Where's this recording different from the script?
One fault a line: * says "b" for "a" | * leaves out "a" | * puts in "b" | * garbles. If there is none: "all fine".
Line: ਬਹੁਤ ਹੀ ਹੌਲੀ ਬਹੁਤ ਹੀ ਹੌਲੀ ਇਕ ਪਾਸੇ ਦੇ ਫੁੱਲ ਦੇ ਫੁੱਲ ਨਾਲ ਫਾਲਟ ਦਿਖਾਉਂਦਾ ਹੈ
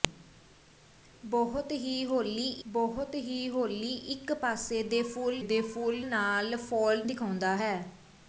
all fine